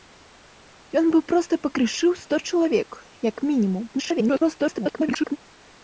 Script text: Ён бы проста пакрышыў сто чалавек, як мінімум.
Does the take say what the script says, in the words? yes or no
no